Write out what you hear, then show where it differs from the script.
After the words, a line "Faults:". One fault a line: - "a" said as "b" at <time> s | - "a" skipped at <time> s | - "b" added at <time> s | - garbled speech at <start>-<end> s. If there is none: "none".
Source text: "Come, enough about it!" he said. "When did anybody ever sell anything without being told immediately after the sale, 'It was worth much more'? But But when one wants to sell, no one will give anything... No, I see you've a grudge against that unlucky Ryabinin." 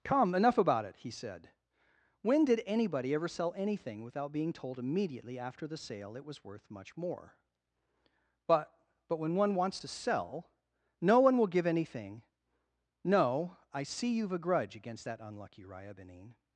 "Come, enough about it!" he said. "When did anybody ever sell anything without being told immediately after the sale, 'It was worth much more'? But But when one wants to sell, no one will give anything... No, I see you've a grudge against that unlucky Ryabinin."
Faults:
none